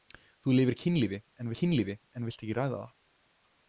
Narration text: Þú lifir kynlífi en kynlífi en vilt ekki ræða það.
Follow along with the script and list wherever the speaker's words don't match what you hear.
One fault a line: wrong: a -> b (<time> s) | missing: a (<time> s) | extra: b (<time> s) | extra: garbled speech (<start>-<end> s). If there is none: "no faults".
no faults